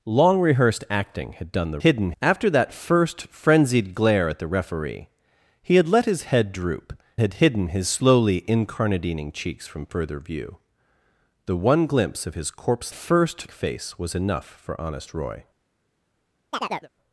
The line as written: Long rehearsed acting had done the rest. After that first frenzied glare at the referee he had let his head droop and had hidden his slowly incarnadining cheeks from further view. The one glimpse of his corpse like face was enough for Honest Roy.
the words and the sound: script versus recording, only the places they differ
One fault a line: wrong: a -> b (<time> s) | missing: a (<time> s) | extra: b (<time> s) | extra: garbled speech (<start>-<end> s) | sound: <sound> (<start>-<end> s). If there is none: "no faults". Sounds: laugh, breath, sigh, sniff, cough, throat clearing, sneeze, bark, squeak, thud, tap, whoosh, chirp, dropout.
wrong: rest -> hidden (1.8 s)
missing: and (7.0 s)
wrong: like -> first (12.9 s)
sound: chirp (16.5-16.9 s)